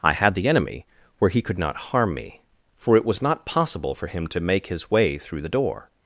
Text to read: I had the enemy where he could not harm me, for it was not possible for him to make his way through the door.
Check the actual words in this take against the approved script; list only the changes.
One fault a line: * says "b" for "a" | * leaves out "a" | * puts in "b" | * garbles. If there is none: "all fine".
all fine